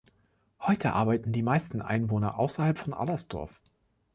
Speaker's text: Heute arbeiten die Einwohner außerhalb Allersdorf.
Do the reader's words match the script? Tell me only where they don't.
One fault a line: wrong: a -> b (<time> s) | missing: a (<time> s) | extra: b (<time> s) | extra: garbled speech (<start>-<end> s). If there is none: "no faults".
extra: meisten (1.4 s)
extra: von (2.8 s)